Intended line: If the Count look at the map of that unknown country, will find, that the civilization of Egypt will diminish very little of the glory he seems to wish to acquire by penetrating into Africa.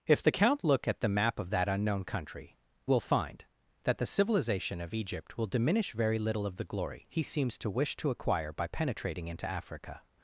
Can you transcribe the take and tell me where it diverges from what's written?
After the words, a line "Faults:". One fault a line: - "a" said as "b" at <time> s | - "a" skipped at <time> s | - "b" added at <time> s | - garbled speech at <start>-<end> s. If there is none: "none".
If the Count look at the map of that unknown country, will find, that the civilization of Egypt will diminish very little of the glory he seems to wish to acquire by penetrating into Africa.
Faults:
none